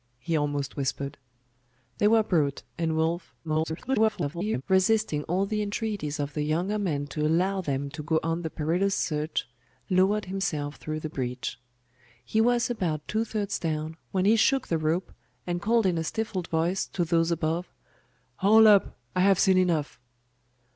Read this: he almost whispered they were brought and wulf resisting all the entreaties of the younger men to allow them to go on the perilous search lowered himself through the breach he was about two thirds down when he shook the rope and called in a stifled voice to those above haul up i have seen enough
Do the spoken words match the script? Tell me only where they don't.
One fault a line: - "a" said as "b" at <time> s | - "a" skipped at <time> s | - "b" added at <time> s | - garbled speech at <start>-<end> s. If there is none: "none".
- garbled speech at 3.4-4.6 s